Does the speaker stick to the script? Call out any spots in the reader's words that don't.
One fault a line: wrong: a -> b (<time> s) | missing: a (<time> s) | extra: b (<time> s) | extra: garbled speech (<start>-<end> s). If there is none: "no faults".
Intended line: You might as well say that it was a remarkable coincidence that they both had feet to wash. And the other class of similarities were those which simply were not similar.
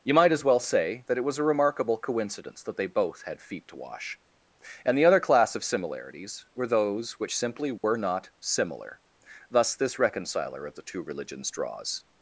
extra: Thus this reconciler of the two religions draws (9.5 s)